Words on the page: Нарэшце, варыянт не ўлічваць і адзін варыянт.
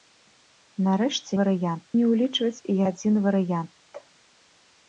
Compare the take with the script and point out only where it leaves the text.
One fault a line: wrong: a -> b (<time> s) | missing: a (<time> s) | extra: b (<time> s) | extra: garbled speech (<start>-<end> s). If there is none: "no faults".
no faults